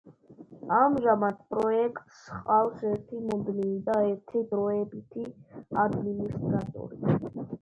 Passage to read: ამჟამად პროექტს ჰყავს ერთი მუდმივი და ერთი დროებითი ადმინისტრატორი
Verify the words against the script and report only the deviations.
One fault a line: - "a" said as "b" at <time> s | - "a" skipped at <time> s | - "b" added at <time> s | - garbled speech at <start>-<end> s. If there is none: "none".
none